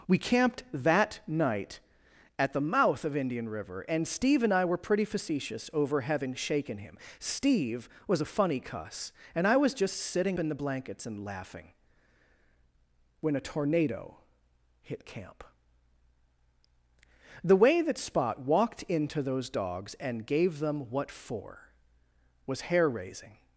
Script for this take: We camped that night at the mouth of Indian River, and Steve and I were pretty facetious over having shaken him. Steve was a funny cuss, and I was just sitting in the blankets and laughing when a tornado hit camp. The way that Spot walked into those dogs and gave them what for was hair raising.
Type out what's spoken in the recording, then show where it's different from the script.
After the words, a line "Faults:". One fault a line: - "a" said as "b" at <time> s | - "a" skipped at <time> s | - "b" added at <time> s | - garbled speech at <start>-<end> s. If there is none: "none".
We camped that night at the mouth of Indian River, and Steve and I were pretty facetious over having shaken him. Steve was a funny cuss, and I was just sitting in the blankets and laughing when a tornado hit camp. The way that Spot walked into those dogs and gave them what for was hair raising.
Faults:
none